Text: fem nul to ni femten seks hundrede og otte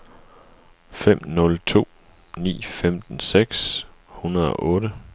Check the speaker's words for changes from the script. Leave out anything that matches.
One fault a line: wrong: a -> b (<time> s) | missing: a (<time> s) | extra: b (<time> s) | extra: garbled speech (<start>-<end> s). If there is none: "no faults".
no faults